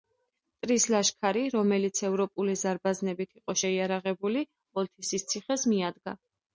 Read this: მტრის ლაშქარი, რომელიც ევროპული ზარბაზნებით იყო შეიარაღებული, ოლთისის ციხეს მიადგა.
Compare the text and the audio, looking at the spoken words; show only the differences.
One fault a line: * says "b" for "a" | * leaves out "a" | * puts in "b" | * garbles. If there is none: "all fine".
all fine